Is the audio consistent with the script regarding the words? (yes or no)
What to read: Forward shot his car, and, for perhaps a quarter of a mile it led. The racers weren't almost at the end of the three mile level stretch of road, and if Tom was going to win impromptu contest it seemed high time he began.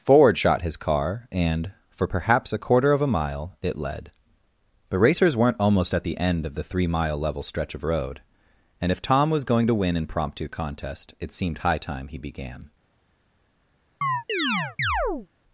yes